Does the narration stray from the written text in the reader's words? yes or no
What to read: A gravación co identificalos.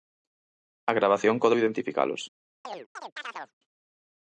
no